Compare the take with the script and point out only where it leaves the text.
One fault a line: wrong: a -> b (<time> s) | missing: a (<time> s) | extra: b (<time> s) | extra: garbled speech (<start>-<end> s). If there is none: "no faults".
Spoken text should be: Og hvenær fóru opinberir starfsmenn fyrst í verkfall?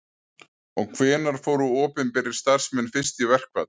no faults